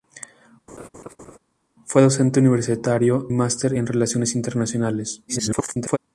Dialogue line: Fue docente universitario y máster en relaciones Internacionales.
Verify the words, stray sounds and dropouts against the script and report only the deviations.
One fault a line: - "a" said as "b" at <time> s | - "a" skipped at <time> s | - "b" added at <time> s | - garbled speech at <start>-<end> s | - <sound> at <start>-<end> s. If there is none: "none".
- laugh at 0.7-1.4 s
- "y" skipped at 3.3 s
- garbled speech at 5.3-6.0 s